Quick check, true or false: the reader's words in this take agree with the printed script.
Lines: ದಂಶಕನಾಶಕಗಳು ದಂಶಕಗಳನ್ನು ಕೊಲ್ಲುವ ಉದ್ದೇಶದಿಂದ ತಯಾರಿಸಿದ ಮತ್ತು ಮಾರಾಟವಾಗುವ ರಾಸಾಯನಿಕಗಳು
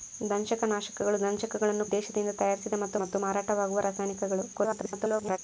false